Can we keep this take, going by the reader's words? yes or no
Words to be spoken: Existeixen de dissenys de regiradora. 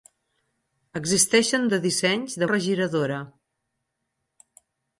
yes